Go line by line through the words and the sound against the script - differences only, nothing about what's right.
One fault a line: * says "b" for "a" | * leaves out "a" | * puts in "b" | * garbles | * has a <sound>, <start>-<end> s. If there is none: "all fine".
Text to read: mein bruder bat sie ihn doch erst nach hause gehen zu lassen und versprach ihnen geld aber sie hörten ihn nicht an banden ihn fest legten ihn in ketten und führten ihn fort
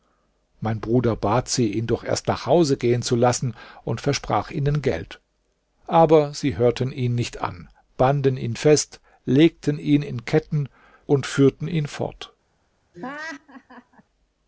* has a laugh, 12.9-14.0 s